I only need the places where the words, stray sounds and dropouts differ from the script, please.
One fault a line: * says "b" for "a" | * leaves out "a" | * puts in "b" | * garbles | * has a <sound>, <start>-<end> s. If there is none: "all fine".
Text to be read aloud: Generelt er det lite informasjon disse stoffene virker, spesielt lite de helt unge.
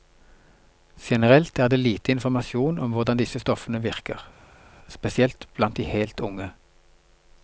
* puts in "om hvordan"
* says "blant" for "lite"